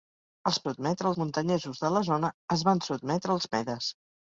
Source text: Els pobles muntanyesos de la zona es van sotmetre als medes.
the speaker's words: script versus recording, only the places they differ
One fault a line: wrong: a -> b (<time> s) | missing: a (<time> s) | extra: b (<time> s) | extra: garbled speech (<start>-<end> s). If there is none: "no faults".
wrong: pobles -> sotmetre (0.7 s)